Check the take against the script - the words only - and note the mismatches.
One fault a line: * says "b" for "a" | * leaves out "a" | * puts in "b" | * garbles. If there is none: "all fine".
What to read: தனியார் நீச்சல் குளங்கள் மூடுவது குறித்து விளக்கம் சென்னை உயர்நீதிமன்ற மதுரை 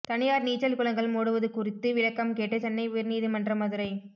* puts in "கேட்டு"